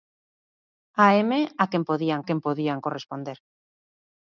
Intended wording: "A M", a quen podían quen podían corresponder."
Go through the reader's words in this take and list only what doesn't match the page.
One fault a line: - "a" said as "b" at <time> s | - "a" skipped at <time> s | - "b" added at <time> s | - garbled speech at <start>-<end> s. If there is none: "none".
none